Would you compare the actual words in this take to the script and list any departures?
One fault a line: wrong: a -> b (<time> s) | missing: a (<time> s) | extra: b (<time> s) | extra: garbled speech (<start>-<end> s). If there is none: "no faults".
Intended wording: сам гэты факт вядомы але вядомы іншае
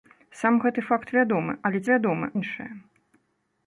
no faults